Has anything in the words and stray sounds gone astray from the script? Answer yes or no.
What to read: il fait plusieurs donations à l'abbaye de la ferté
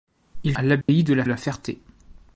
yes